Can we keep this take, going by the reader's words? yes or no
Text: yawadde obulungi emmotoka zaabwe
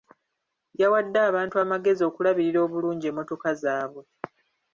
no